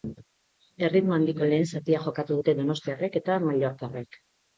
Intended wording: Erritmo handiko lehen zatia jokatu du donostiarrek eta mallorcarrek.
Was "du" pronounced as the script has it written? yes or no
no